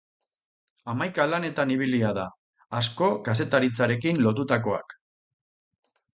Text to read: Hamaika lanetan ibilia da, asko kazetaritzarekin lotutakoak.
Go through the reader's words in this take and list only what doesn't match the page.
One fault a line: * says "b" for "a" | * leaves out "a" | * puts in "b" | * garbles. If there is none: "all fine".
all fine